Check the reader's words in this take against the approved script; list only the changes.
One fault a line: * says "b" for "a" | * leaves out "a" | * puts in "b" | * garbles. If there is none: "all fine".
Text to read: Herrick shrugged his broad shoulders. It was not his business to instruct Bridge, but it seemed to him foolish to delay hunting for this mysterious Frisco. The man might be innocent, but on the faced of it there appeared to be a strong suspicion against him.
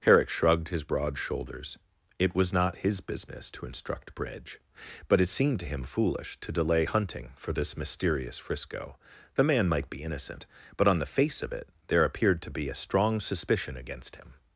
* says "face" for "faced"